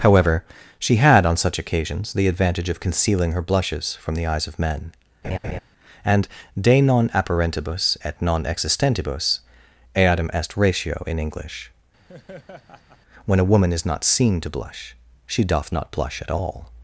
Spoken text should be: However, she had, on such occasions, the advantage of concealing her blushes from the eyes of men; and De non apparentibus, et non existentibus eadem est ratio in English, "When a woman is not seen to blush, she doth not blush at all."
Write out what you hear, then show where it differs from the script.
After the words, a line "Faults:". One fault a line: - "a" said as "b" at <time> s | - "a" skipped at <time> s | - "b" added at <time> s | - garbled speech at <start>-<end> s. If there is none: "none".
However, she had, on such occasions, the advantage of concealing her blushes from the eyes of men; and De non apparentibus, et non existentibus eadem est ratio in English, "When a woman is not seen to blush, she doth not blush at all."
Faults:
none